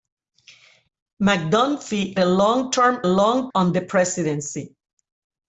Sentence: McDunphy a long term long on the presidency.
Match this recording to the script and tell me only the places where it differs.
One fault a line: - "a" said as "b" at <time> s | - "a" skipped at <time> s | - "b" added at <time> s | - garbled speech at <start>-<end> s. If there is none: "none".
none